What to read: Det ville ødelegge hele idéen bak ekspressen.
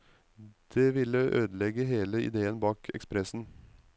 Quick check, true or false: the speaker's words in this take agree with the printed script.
true